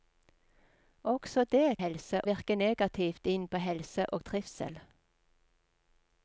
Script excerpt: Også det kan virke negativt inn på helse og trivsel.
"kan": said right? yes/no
no